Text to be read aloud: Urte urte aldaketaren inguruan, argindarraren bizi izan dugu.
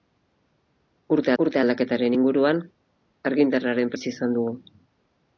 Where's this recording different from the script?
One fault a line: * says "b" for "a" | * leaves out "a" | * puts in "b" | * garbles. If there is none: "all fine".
all fine